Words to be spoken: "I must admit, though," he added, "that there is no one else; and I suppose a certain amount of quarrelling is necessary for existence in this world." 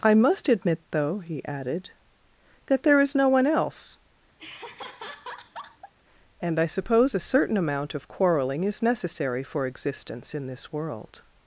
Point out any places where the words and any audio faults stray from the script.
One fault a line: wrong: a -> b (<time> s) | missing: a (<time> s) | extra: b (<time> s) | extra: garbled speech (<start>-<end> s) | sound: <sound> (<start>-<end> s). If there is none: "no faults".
sound: laugh (4.4-5.9 s)